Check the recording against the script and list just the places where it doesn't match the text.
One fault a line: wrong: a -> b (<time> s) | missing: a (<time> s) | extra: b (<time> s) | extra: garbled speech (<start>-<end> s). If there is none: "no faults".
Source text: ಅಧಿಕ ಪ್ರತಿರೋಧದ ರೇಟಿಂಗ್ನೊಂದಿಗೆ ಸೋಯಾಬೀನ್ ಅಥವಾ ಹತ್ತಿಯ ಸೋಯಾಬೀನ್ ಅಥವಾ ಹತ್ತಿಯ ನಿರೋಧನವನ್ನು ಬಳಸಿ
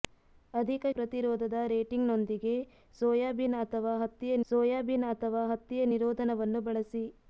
no faults